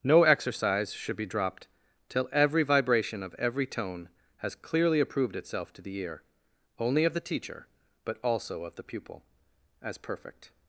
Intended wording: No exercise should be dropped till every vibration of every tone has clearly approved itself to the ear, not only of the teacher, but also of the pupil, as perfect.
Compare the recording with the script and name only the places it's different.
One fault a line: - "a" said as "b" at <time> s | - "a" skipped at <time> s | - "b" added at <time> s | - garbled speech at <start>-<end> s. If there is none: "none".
- "not" skipped at 6.2 s